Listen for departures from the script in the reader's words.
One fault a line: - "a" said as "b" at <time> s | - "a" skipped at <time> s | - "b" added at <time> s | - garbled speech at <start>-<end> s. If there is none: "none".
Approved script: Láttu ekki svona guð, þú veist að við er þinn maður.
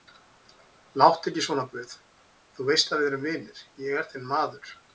- "erum vinir ég" added at 3.1 s